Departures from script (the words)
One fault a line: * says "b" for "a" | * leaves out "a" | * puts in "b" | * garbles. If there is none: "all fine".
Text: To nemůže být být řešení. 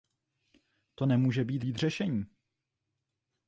all fine